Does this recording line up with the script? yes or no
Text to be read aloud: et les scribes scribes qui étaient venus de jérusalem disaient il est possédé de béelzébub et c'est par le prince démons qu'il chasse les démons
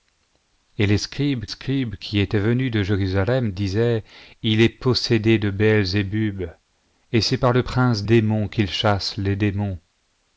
yes